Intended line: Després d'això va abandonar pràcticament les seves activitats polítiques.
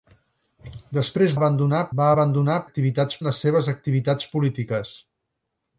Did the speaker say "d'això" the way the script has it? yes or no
no